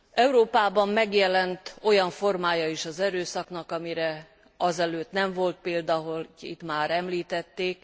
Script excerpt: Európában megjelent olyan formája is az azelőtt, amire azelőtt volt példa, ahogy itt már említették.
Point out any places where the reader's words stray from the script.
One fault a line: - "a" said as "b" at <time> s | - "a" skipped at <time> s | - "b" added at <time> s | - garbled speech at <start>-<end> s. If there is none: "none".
- "azelőtt" said as "erőszaknak" at 3.0 s
- "nem" added at 5.1 s